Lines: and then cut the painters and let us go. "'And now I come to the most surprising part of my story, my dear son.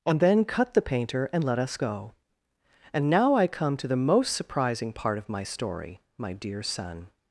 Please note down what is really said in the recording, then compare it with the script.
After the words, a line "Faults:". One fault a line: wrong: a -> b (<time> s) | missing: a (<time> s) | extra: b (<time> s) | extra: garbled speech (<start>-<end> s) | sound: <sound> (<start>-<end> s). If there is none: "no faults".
and then cut the painter and let us go. "'And now I come to the most surprising part of my story, my dear son.
Faults:
wrong: painters -> painter (0.8 s)